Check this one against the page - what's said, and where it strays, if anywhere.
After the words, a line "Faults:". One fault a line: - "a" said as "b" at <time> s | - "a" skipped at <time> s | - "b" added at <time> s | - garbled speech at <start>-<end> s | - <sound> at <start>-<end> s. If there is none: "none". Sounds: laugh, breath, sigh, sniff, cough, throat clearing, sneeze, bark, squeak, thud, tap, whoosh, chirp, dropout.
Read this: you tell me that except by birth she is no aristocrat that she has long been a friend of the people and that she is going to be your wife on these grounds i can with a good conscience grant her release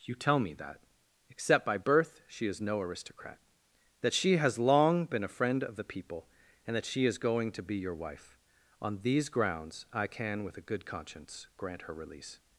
you tell me that except by birth she is no aristocrat that she has long been a friend of the people and that she is going to be your wife on these grounds i can with a good conscience grant her release
Faults:
none